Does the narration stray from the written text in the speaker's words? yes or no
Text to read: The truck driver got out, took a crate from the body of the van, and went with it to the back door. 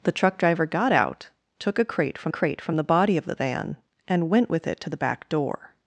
yes